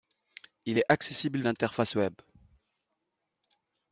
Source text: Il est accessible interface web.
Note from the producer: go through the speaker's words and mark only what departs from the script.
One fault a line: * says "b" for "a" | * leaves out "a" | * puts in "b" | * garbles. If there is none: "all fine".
all fine